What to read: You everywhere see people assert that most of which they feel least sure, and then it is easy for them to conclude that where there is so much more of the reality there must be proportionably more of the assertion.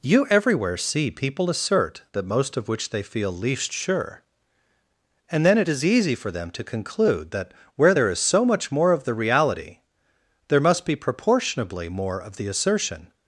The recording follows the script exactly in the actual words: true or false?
true